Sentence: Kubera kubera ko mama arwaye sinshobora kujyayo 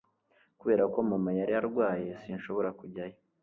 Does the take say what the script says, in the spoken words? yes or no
no